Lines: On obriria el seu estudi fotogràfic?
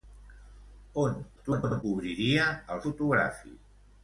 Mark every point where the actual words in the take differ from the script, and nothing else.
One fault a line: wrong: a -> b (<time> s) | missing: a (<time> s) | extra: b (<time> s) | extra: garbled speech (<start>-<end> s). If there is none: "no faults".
extra: garbled speech (1.4-1.8 s)
missing: seu estudi (2.8 s)